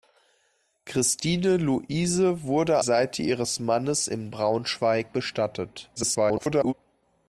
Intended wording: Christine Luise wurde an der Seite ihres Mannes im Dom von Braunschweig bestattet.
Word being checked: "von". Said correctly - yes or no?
no